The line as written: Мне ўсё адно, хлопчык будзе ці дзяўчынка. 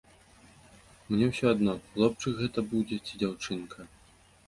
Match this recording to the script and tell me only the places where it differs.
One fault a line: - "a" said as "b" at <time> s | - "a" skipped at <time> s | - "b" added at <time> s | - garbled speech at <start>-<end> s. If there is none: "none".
- "гэта" added at 2.4 s